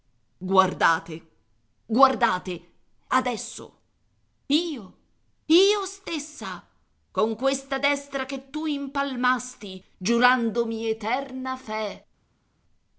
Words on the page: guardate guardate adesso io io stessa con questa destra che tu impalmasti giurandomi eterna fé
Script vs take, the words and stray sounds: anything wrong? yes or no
no